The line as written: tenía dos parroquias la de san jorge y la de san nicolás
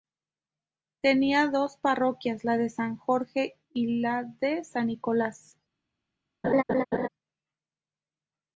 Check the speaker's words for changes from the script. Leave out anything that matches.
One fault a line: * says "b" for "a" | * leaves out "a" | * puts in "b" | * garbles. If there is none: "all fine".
all fine